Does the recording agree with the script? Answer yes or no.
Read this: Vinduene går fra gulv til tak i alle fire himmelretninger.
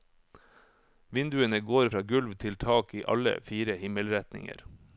yes